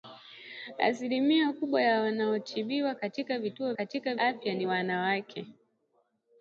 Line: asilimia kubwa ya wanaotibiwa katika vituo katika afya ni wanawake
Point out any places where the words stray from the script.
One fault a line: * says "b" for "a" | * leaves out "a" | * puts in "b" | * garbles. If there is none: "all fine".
all fine